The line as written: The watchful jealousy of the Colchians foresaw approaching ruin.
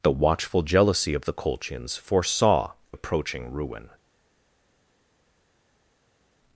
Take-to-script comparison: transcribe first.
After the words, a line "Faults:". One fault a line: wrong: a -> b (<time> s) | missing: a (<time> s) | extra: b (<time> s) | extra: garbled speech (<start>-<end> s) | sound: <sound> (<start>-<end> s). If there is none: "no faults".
The watchful jealousy of the Colchians foresaw approaching ruin.
Faults:
no faults